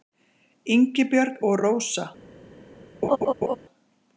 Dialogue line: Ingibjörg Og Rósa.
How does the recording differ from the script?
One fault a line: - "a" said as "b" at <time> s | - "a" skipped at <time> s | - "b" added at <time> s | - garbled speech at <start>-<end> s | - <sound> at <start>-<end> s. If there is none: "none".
- laugh at 3.0-3.6 s